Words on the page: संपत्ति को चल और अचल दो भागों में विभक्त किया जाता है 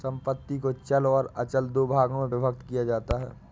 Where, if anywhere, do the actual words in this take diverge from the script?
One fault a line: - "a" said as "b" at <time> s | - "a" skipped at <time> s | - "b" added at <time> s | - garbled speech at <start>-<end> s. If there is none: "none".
none